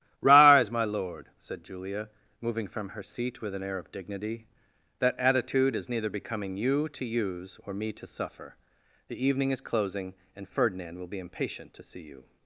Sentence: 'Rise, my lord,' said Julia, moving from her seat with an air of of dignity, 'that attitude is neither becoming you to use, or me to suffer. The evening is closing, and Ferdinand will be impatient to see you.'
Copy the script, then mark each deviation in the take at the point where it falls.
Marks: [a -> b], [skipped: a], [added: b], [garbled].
'Rise, my lord,' said Julia, moving from her seat with an air of [skipped: of] dignity, 'that attitude is neither becoming you to use, or me to suffer. The evening is closing, and Ferdinand will be impatient to see you.'